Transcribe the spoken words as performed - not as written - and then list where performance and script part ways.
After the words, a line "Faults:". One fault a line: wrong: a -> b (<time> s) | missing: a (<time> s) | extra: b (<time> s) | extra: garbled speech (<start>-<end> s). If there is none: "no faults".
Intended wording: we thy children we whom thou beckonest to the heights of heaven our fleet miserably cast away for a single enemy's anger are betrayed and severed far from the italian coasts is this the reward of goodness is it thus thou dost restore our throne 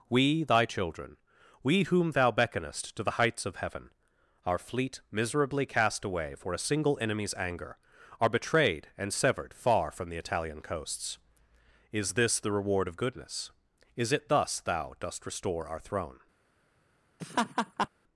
we thy children we whom thou beckonest to the heights of heaven our fleet miserably cast away for a single enemy's anger are betrayed and severed far from the italian coasts is this the reward of goodness is it thus thou dost restore our throne
Faults:
no faults